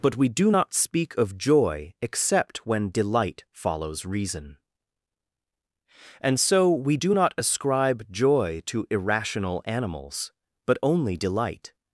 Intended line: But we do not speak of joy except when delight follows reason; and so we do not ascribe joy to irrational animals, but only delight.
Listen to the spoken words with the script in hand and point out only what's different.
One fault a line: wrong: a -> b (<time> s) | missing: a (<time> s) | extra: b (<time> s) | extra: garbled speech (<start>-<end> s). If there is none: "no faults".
no faults